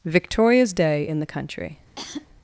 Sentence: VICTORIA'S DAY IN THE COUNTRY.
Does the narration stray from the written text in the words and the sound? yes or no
yes